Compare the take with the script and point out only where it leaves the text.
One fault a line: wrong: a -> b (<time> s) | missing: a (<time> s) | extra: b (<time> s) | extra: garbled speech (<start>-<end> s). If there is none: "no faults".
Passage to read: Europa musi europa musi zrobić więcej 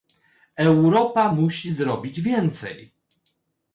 missing: europa musi (1.7 s)